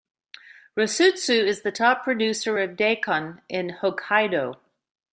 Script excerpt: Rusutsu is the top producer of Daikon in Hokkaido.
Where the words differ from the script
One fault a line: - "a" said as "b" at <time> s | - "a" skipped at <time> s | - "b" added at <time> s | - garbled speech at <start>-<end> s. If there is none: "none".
none